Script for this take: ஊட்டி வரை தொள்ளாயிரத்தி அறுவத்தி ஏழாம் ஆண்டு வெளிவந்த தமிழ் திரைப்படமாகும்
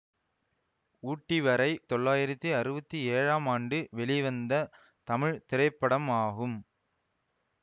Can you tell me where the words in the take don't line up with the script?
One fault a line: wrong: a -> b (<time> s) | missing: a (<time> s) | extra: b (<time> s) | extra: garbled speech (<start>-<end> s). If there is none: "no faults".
no faults